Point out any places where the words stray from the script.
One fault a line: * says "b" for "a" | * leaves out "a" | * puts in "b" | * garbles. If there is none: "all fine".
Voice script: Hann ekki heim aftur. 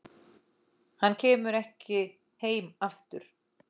* puts in "kemur"